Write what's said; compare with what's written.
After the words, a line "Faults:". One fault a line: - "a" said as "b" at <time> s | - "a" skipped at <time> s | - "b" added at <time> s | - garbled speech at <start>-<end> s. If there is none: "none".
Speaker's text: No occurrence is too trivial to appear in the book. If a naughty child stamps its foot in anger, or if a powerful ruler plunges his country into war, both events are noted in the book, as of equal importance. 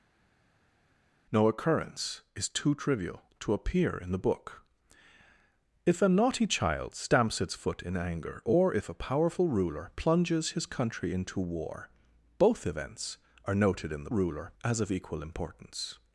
No occurrence is too trivial to appear in the book. If a naughty child stamps its foot in anger, or if a powerful ruler plunges his country into war, both events are noted in the ruler, as of equal importance.
Faults:
- "book" said as "ruler" at 14.1 s